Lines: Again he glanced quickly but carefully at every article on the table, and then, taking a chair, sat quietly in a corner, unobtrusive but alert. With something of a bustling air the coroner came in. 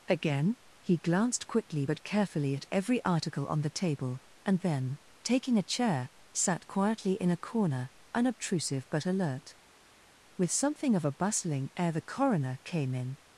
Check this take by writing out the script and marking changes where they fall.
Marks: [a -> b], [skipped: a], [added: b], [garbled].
Again he glanced quickly but carefully at every article on the table, and then, taking a chair, sat quietly in a corner, unobtrusive but alert. With something of a bustling air the coroner came in.